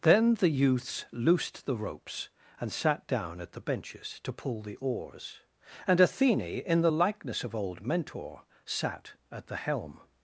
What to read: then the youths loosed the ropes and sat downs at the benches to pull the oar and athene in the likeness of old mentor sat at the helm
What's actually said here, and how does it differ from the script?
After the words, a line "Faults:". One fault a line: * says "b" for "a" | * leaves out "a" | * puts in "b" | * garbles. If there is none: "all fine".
then the youths loosed the ropes and sat down at the benches to pull the oars and athene in the likeness of old mentor sat at the helm
Faults:
* says "down" for "downs"
* says "oars" for "oar"